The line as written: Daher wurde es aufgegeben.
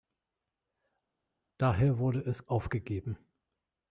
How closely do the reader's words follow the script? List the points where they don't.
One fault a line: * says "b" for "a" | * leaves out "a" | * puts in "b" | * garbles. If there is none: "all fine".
all fine